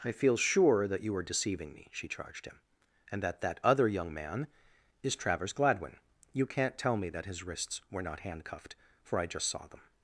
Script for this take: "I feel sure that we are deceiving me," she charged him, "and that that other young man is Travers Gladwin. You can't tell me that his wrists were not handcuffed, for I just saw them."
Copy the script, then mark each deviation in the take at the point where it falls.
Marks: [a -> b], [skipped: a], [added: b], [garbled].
"I feel sure that [we -> you] are deceiving me," she charged him, "and that that other young man is Travers Gladwin. You can't tell me that his wrists were not handcuffed, for I just saw them."